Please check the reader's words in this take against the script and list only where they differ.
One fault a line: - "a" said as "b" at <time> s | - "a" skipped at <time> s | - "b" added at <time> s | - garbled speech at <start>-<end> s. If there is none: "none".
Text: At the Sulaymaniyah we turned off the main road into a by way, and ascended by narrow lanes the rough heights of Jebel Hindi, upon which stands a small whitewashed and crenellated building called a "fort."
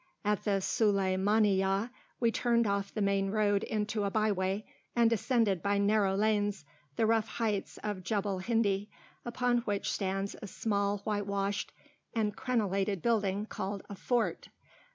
none